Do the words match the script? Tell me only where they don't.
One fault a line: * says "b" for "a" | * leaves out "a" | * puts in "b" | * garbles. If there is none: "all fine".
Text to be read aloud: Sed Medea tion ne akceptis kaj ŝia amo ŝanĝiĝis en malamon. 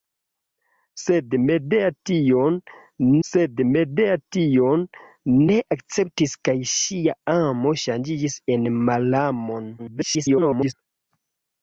* puts in "sed Medea tion"
* garbles